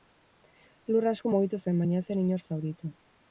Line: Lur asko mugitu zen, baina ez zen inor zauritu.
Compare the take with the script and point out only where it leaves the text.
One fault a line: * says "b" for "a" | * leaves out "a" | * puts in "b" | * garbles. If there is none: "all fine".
all fine